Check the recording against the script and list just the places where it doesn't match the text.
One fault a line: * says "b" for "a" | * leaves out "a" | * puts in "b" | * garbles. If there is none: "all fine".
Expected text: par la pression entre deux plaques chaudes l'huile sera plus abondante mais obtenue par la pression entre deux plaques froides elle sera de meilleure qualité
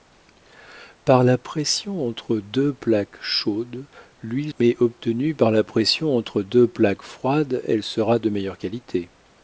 * leaves out "sera plus abondante"